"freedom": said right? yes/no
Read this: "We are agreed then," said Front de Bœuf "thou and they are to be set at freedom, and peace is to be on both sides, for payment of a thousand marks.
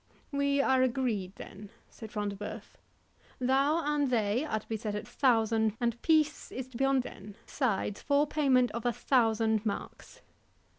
no